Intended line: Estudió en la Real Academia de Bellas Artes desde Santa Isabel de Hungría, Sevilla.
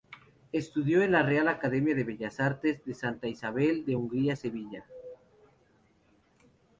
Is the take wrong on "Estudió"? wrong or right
right